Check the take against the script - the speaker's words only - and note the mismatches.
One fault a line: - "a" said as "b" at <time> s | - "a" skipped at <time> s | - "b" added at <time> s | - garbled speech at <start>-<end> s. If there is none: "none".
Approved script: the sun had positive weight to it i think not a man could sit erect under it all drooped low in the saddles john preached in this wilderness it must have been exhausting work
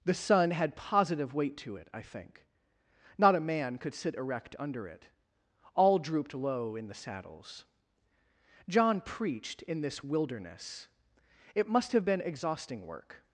none